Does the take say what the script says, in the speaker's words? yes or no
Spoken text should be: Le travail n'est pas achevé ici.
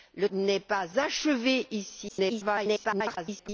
no